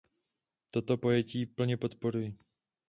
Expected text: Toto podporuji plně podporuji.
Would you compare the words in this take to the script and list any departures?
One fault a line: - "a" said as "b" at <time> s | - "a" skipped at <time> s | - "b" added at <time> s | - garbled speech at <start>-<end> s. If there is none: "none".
- "podporuji" said as "pojetí" at 0.9 s